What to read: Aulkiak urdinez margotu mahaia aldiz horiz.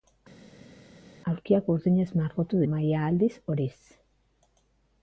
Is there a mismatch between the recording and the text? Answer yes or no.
no